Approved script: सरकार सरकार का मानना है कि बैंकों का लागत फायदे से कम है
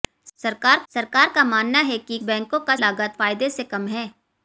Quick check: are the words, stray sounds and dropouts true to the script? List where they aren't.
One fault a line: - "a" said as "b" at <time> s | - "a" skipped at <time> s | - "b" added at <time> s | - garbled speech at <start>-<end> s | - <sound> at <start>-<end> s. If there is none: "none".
none